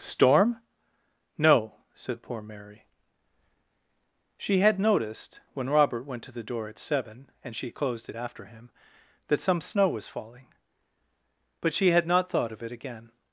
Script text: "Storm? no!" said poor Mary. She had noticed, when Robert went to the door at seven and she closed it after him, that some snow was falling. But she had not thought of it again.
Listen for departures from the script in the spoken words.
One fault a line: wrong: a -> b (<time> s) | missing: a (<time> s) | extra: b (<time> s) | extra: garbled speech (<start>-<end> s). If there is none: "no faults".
no faults